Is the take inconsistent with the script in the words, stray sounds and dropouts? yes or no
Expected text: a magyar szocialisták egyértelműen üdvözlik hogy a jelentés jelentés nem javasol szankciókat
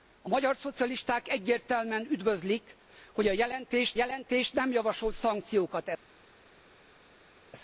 no